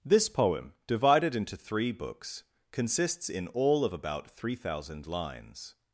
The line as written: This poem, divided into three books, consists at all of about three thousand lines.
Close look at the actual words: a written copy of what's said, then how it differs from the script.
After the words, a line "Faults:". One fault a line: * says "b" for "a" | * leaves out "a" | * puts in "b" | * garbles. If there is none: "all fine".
This poem, divided into three books, consists in all of about three thousand lines.
Faults:
* says "in" for "at"